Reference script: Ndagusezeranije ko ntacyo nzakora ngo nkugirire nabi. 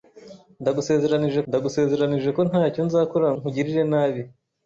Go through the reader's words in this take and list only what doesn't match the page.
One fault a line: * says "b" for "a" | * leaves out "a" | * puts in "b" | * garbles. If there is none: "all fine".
* puts in "ndagusezeranije"
* leaves out "ngo"